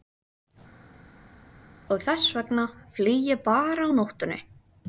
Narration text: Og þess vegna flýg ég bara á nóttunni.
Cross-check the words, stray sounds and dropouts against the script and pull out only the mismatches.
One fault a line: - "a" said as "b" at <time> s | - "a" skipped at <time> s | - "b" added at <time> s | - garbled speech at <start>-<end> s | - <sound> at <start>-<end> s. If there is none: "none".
none